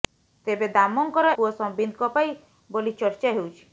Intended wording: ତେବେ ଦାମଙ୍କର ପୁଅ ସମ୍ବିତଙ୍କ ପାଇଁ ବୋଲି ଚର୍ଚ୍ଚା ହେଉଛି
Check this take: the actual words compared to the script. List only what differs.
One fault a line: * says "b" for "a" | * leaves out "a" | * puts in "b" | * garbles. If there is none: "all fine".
all fine